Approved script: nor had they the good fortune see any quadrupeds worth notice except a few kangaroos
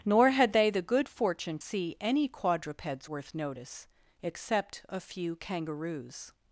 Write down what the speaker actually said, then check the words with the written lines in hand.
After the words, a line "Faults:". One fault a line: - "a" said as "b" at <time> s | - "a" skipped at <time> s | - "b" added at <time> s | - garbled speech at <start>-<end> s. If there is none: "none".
nor had they the good fortune see any quadrupeds worth notice except a few kangaroos
Faults:
none